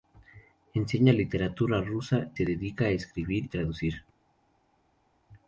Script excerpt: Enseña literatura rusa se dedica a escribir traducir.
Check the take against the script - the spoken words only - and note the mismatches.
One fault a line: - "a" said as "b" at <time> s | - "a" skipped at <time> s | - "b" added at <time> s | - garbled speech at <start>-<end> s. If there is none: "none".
none